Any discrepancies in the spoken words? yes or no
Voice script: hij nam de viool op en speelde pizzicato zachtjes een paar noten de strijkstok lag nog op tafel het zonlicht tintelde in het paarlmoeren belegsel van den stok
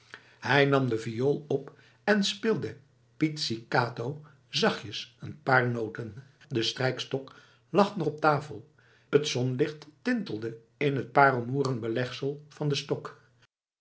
no